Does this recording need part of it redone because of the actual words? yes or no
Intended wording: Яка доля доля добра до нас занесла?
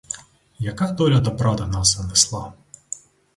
yes